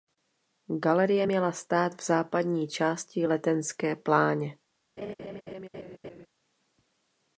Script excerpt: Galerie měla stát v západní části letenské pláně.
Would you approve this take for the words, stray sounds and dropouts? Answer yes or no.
no